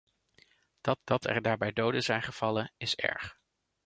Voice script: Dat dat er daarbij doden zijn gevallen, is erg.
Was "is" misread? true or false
false